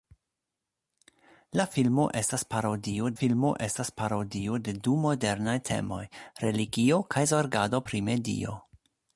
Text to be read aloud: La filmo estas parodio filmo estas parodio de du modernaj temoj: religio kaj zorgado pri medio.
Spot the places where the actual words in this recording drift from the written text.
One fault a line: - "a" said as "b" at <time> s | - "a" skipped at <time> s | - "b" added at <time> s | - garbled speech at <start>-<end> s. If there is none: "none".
none